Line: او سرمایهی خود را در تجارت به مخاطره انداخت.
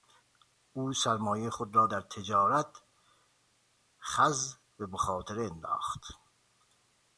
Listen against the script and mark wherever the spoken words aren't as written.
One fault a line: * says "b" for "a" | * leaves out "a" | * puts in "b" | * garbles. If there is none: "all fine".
* puts in "خز"